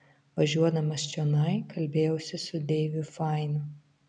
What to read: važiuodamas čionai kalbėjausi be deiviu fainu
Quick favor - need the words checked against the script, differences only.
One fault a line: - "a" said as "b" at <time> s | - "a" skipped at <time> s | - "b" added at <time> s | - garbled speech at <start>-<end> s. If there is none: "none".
- "be" said as "su" at 2.5 s